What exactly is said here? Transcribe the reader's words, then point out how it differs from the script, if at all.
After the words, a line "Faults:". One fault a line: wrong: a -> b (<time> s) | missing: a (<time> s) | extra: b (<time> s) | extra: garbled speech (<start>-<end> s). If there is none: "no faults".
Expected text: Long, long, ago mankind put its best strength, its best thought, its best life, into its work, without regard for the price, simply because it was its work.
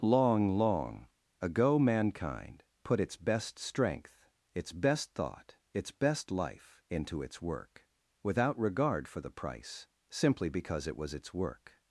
Long, long, ago mankind put its best strength, its best thought, its best life, into its work, without regard for the price, simply because it was its work.
Faults:
no faults